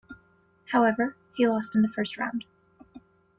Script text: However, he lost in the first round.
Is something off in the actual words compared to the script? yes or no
no